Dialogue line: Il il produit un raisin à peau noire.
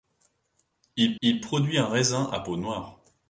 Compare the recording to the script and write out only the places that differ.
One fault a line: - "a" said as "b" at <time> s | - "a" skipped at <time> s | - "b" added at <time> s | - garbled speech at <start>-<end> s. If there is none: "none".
none